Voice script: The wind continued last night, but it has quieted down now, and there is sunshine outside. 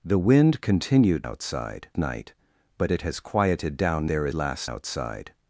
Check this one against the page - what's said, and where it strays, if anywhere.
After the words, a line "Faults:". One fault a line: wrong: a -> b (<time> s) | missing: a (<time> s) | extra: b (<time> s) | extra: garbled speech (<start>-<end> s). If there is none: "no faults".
The wind continued outside night, but it has quieted down there is last outside.
Faults:
wrong: last -> outside (1.2 s)
missing: now and (4.1 s)
wrong: sunshine -> last (4.3 s)